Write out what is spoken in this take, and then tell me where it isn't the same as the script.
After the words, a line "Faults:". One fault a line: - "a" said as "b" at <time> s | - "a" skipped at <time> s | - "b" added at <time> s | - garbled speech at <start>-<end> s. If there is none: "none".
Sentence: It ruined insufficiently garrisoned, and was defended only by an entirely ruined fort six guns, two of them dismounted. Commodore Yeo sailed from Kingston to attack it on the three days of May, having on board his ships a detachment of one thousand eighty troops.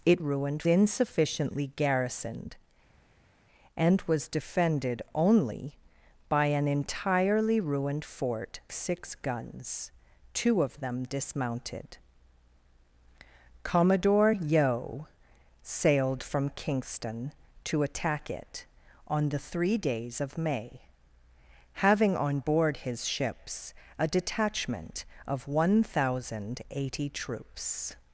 It ruined insufficiently garrisoned, and was defended only by an entirely ruined fort six guns, two of them dismounted. Commodore Yeo sailed from Kingston to attack it on the three days of May, having on board his ships a detachment of one thousand eighty troops.
Faults:
none